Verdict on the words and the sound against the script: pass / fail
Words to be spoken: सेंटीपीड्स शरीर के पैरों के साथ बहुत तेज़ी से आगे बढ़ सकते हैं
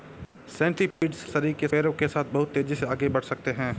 fail